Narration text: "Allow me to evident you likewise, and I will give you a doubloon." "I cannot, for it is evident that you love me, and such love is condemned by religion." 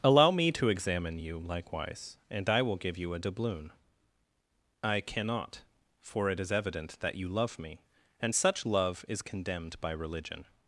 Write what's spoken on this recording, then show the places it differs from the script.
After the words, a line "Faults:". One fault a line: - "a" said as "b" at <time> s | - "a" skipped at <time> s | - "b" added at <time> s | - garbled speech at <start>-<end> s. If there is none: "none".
"Allow me to examine you likewise, and I will give you a doubloon." "I cannot, for it is evident that you love me, and such love is condemned by religion."
Faults:
- "evident" said as "examine" at 0.7 s